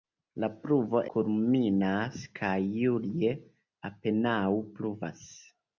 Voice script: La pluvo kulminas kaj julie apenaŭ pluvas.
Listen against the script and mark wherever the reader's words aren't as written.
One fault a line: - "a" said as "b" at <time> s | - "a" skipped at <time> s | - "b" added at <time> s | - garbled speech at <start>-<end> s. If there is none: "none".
none